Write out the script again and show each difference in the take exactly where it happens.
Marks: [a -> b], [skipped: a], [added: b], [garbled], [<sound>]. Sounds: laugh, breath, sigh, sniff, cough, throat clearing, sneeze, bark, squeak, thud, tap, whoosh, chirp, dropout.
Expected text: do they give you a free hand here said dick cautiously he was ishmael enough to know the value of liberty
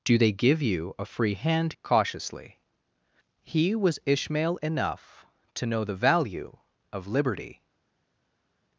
do they give you a free hand [skipped: here said dick] cautiously he was ishmael enough to know the value of liberty